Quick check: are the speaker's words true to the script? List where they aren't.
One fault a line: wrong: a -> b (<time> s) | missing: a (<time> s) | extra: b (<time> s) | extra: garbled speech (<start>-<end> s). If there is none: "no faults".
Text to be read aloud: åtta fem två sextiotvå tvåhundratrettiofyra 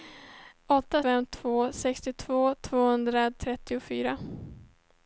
no faults